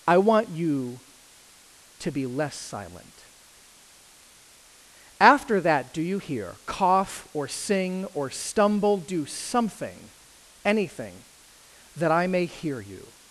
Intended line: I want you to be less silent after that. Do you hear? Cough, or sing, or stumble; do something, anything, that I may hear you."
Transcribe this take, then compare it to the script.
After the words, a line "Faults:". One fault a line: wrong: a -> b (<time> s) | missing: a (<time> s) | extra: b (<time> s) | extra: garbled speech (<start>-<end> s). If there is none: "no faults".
I want you to be less silent after that. Do you hear? Cough, or sing, or stumble; do something, anything, that I may hear you."
Faults:
no faults